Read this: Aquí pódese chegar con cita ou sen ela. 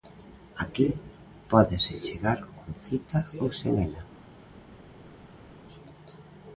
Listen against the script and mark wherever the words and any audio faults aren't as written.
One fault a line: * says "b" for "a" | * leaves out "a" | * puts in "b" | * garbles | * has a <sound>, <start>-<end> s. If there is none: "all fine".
all fine